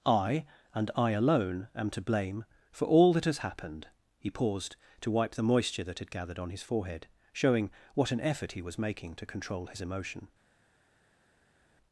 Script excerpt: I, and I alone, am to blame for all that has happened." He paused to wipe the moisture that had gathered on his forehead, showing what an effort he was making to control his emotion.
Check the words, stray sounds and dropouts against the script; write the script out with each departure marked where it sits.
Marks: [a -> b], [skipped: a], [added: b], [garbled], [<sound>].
I, and I alone, am to blame for all that has happened." He paused to wipe the moisture that had gathered on his forehead, showing what an effort he was making to control his emotion.